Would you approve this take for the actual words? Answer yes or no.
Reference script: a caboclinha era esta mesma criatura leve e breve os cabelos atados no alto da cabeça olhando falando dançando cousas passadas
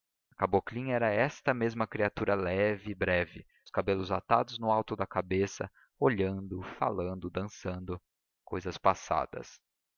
yes